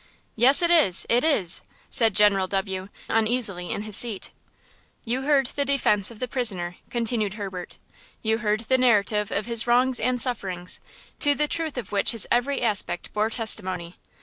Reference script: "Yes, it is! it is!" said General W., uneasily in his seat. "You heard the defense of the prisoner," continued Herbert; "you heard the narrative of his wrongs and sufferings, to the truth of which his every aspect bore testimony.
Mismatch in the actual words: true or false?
false